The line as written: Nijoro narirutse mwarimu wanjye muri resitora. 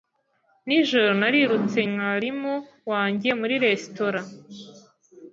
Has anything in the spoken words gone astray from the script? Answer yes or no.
no